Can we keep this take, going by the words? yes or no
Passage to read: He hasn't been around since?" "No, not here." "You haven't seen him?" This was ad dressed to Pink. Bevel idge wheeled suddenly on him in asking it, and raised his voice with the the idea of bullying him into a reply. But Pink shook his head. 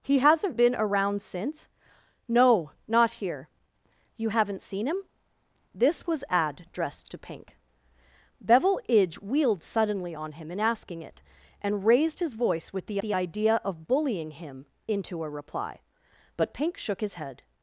yes